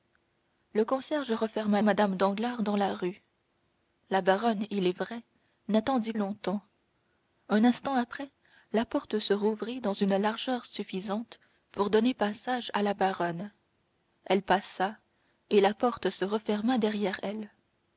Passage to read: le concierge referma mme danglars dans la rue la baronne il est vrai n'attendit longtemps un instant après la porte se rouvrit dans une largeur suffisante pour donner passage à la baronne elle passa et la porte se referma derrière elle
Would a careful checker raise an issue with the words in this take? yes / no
no